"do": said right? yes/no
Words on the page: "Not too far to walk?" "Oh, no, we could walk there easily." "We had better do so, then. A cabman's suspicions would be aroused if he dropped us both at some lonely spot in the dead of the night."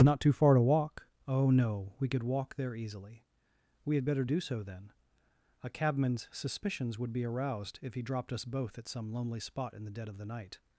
yes